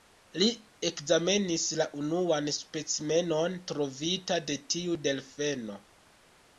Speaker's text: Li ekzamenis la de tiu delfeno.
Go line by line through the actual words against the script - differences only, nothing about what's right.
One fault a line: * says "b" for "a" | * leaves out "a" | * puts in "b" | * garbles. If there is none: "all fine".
* puts in "unuan specimenon trovita"